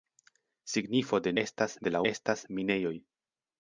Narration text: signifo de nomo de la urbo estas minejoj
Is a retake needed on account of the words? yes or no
yes